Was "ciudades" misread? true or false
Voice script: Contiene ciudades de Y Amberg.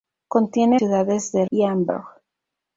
false